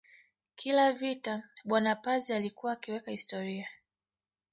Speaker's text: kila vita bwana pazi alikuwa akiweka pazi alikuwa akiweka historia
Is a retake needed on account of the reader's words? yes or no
yes